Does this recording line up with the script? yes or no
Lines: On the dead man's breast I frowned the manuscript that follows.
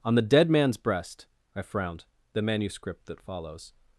yes